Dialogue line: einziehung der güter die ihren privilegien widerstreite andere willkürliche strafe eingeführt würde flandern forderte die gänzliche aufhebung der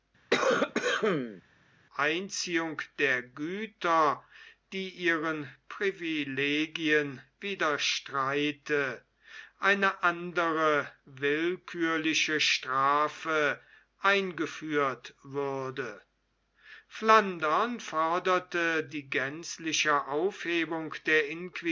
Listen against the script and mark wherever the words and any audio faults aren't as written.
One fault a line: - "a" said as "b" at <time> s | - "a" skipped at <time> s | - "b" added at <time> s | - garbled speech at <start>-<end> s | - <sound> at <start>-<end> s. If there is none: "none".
- cough at 0.3-1.4 s
- "eine" added at 9.6 s